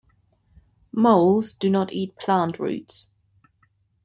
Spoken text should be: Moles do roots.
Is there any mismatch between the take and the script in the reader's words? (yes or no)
yes